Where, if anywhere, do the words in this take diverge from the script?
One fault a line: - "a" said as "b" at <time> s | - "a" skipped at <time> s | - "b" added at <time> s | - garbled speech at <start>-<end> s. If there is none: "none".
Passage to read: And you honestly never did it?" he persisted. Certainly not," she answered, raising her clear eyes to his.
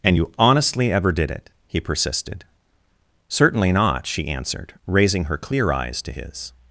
- "never" said as "ever" at 0.9 s